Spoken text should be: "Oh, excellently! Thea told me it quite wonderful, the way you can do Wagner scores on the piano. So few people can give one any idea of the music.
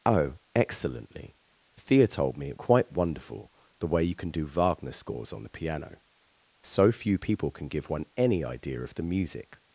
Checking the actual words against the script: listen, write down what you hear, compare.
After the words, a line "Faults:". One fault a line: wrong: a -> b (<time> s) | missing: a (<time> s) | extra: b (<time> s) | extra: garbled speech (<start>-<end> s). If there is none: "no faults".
"Oh, excellently! Thea told me it quite wonderful, the way you can do Wagner scores on the piano. So few people can give one any idea of the music.
Faults:
no faults